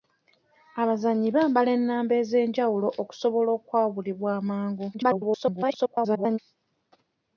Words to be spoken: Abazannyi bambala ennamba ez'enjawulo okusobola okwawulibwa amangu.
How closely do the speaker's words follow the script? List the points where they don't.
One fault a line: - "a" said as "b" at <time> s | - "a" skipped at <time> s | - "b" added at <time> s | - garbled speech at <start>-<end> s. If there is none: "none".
- garbled speech at 4.9-6.4 s